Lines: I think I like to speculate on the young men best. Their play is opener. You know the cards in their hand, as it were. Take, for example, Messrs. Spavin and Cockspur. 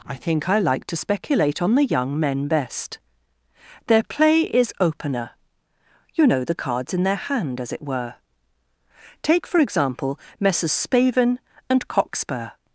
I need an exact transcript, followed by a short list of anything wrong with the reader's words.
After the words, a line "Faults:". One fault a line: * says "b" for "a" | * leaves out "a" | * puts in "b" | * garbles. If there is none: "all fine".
I think I like to speculate on the young men best. Their play is opener. You know the cards in their hand, as it were. Take, for example, Messrs. Spavin and Cockspur.
Faults:
all fine